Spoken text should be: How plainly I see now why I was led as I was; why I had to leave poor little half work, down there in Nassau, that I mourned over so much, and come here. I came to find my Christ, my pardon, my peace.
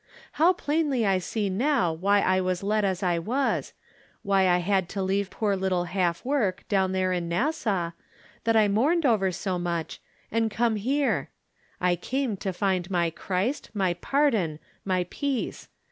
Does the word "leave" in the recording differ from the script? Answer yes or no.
no